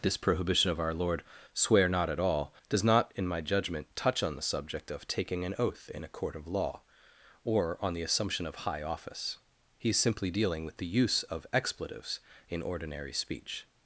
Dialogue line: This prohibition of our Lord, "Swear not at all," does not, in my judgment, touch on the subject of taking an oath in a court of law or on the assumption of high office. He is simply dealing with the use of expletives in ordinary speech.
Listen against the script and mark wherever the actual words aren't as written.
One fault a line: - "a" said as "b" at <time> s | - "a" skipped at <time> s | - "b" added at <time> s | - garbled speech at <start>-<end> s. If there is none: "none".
none